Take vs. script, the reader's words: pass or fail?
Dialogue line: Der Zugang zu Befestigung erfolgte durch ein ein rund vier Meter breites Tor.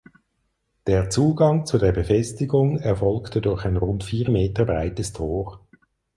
fail